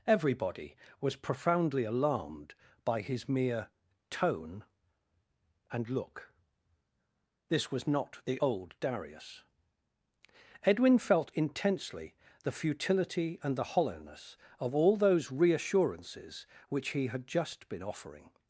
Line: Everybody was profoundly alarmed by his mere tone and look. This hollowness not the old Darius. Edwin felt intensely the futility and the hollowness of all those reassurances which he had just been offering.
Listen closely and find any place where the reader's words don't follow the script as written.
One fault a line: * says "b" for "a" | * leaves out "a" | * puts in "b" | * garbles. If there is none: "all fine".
* says "was" for "hollowness"